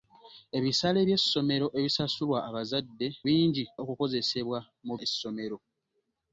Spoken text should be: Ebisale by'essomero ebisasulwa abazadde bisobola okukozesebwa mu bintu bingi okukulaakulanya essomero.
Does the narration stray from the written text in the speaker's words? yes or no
yes